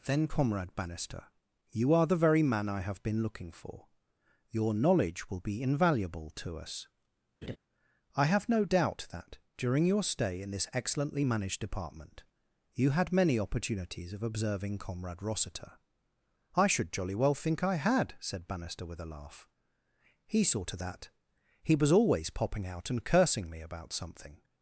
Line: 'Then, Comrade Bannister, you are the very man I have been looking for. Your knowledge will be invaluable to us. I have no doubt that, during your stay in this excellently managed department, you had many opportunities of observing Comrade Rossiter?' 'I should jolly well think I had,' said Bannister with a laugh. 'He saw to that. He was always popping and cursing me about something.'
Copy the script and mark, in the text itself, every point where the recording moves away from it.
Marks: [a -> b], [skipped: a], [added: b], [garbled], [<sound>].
'Then, Comrade Bannister, you are the very man I have been looking for. Your knowledge will be invaluable to us. [laugh] I have no doubt that, during your stay in this excellently managed department, you had many opportunities of observing Comrade Rossiter?' 'I should jolly well think I had,' said Bannister with a laugh. 'He saw to that. He was always popping [added: out] and cursing me about something.'